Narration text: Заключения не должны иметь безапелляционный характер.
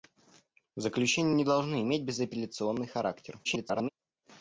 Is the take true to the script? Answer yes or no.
no